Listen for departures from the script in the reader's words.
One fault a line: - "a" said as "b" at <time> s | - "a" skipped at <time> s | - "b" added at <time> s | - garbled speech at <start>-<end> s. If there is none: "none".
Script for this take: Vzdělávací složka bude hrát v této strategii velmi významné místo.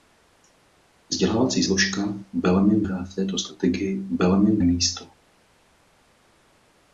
- "bude" said as "velmi" at 2.4 s
- "významné" skipped at 4.6 s